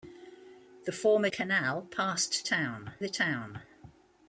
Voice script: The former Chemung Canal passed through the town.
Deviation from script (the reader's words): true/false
true